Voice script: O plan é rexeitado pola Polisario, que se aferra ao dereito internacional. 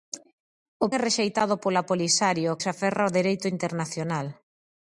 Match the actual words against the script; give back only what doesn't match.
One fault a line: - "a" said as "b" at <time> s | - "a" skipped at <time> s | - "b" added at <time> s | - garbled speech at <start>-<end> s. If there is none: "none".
- "plan" skipped at 0.9 s
- "que" skipped at 2.5 s